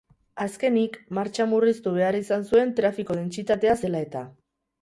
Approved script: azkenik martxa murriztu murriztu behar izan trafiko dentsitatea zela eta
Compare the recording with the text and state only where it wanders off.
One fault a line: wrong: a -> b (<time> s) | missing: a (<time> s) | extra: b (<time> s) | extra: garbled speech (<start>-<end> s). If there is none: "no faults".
missing: murriztu (1.9 s)
extra: zuen (2.5 s)